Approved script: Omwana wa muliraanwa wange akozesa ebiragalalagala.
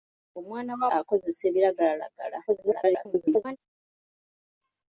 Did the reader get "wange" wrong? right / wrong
wrong